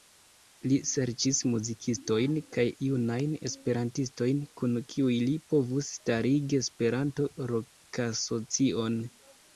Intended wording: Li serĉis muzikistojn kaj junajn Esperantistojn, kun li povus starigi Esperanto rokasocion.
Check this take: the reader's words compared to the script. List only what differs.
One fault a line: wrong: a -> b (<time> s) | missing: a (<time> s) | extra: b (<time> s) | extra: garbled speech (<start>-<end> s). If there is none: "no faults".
extra: kiuj (5.0 s)